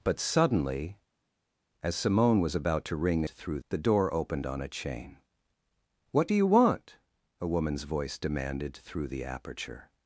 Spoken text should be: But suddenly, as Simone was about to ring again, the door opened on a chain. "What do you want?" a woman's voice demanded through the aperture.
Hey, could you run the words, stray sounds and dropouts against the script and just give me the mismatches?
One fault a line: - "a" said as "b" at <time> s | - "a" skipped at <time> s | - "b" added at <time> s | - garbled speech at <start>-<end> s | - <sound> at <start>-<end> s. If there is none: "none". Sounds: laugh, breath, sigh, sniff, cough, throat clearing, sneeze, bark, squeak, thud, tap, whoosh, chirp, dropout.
- "again" said as "through" at 3.3 s